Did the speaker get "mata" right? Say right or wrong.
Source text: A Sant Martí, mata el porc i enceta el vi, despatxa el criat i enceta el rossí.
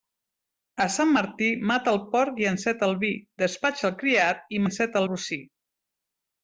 right